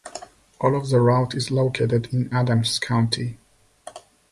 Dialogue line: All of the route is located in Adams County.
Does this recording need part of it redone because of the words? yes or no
no